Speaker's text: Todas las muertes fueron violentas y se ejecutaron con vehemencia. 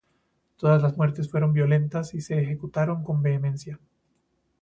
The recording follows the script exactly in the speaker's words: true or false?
true